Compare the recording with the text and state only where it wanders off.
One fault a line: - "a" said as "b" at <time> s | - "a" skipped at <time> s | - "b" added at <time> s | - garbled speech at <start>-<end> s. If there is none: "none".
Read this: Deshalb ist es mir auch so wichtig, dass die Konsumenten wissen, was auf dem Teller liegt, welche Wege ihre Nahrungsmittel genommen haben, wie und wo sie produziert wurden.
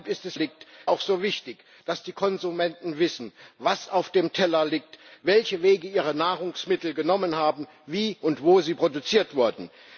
- "mir" said as "liegt" at 0.3 s